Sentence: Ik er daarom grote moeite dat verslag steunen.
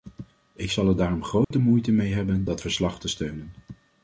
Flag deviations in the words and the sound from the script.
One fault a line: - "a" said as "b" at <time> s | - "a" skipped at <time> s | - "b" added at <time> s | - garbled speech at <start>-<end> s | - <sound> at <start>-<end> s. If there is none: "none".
- "zal" added at 0.7 s
- dropout at 1.4-1.5 s
- "mee hebben" added at 1.9 s
- "te" added at 3.0 s